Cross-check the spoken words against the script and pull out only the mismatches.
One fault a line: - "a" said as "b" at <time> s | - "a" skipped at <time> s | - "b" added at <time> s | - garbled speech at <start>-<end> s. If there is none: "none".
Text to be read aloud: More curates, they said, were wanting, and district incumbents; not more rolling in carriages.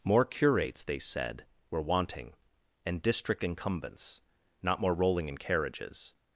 none